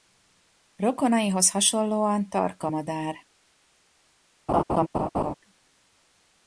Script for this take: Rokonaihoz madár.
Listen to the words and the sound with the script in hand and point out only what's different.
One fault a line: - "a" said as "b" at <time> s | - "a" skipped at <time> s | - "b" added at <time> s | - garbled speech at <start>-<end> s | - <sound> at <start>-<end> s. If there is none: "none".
- "hasonlóan tarka" added at 1.5 s
- laugh at 4.5-5.3 s